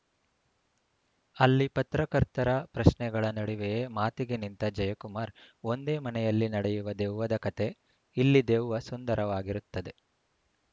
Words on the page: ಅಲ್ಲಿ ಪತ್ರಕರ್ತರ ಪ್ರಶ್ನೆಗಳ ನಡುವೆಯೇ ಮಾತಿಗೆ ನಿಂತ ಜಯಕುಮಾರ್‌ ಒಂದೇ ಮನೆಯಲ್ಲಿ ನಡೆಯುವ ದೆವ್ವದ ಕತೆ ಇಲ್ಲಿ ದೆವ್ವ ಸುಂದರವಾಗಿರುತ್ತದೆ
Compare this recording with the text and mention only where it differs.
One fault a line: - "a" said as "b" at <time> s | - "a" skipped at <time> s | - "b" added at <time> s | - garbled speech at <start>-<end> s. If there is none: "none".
none